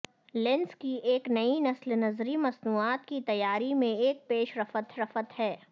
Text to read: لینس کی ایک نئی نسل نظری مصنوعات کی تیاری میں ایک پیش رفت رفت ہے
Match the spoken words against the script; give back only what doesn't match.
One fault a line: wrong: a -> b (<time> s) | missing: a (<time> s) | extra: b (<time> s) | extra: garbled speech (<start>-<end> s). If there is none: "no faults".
no faults